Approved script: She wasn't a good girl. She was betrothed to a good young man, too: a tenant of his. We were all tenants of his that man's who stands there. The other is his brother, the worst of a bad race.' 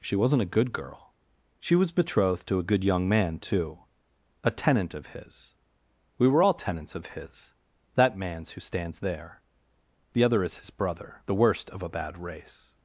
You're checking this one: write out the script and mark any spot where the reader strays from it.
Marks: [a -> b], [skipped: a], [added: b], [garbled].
She wasn't a good girl. She was betrothed to a good young man, too: a tenant of his. We were all tenants of his that man's who stands there. The other is his brother, the worst of a bad race.'